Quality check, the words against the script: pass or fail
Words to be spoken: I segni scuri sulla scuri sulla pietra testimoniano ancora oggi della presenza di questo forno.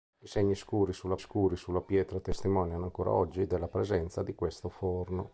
pass